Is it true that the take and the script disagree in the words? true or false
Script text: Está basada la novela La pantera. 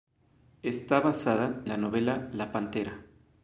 false